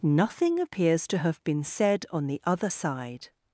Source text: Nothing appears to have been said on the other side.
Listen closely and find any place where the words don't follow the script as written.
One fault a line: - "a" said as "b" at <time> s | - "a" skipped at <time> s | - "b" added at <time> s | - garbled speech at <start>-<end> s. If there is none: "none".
none